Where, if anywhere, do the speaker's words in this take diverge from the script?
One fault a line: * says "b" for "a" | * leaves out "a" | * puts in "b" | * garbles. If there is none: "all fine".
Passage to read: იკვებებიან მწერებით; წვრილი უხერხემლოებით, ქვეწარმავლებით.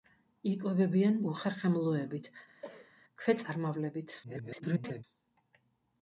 * leaves out "მწერებით წვრილი"
* garbles